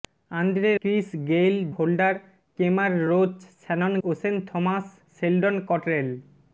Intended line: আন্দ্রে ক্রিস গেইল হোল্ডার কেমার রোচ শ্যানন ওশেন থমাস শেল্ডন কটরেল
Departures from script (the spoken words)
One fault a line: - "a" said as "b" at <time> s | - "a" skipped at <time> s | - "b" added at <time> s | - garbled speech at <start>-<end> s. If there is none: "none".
none